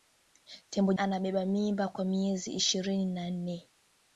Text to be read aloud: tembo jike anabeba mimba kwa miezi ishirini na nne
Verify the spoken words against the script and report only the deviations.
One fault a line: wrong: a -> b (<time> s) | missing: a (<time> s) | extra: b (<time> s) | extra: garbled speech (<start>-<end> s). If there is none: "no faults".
missing: jike (0.9 s)